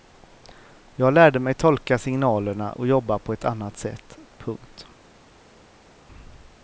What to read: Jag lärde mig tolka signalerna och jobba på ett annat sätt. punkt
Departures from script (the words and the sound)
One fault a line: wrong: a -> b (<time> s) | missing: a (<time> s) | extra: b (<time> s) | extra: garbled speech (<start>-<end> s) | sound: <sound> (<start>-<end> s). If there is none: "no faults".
no faults